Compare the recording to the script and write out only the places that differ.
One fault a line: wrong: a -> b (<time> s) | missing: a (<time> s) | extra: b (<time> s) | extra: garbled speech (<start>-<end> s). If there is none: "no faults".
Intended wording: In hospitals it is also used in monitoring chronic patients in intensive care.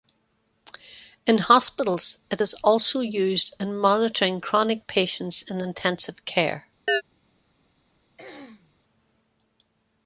no faults